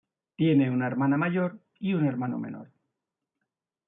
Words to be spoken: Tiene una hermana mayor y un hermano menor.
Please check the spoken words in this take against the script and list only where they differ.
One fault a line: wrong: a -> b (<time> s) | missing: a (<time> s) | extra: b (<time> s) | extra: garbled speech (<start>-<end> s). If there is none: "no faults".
no faults